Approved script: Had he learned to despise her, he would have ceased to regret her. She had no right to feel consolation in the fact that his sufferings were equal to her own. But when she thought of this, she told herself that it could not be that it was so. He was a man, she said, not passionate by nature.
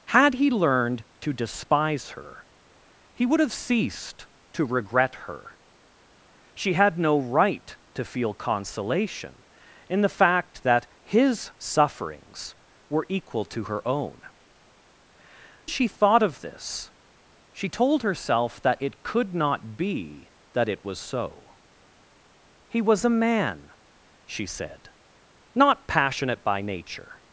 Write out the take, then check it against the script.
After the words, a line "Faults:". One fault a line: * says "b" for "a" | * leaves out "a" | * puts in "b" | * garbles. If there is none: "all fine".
Had he learned to despise her, he would have ceased to regret her. She had no right to feel consolation in the fact that his sufferings were equal to her own. She thought of this, she told herself that it could not be that it was so. He was a man, she said, not passionate by nature.
Faults:
* leaves out "But when"